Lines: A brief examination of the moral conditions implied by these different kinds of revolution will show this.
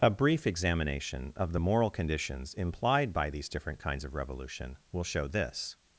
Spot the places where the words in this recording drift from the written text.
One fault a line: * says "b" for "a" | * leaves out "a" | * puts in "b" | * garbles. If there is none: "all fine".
all fine